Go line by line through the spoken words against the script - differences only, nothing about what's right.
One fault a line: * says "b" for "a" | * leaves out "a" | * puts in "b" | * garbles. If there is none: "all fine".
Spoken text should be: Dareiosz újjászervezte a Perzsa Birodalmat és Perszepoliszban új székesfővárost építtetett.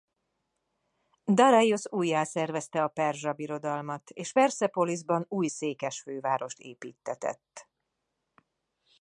all fine